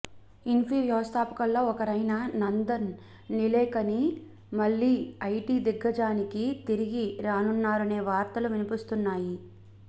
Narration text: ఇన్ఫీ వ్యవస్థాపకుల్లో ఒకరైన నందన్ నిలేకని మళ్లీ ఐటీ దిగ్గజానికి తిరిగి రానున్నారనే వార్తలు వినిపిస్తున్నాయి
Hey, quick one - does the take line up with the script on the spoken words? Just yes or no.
yes